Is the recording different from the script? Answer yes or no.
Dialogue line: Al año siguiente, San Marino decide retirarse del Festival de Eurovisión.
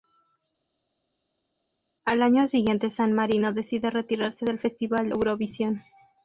yes